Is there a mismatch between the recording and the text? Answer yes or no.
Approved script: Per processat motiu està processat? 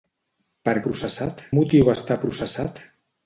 no